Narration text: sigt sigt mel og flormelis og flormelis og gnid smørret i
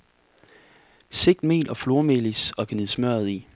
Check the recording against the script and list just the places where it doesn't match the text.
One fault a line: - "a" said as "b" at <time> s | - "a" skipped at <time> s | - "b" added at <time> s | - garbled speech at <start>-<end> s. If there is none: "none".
- "sigt" skipped at 1.4 s
- "flormelis og" skipped at 2.7 s